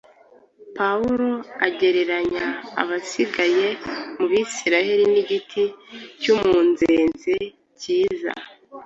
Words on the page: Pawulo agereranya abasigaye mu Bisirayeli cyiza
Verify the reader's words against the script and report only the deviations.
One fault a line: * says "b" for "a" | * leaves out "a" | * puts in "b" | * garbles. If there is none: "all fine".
* puts in "n'igiti cy'umunzenze"